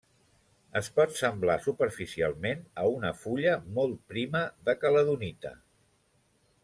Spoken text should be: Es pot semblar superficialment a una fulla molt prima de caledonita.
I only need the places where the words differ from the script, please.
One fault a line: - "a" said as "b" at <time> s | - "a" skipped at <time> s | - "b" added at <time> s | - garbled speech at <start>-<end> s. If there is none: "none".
none